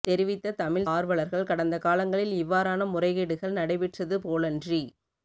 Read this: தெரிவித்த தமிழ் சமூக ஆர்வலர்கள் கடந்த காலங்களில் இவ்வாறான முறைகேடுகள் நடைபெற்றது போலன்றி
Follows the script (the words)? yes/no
no